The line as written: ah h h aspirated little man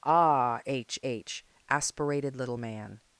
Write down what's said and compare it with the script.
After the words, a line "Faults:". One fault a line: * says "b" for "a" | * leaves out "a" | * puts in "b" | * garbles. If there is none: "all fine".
ah h h aspirated little man
Faults:
all fine